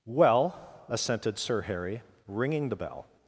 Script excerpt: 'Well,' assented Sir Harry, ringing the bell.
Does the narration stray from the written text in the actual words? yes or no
no